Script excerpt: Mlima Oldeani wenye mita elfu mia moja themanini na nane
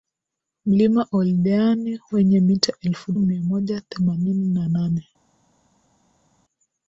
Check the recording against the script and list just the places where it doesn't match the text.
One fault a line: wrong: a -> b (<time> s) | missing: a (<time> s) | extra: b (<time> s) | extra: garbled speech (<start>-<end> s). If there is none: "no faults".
no faults